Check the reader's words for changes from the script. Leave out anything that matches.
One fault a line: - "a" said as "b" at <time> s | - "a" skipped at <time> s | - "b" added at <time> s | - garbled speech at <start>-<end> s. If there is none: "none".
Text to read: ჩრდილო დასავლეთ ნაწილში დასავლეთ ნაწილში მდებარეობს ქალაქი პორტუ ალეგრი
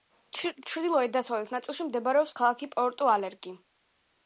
- "დასავლეთ ნაწილში" skipped at 1.9 s